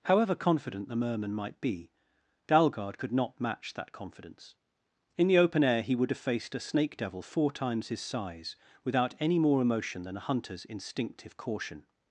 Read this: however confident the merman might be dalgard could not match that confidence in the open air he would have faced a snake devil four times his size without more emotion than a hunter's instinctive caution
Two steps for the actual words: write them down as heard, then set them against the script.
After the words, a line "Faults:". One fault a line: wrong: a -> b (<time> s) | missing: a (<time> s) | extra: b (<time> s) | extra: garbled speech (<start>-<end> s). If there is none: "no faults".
however confident the merman might be dalgard could not match that confidence in the open air he would have faced a snake devil four times his size without any more emotion than a hunter's instinctive caution
Faults:
extra: any (9.2 s)